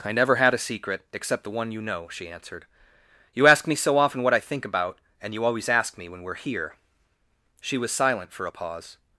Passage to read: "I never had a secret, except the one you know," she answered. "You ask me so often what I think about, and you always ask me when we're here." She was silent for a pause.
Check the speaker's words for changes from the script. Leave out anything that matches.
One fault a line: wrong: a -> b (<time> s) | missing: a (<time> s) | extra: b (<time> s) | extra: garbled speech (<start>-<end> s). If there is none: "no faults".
no faults